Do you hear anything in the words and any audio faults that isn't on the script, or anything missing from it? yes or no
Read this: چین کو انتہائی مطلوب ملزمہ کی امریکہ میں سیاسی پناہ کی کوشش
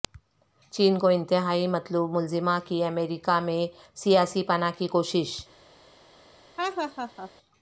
yes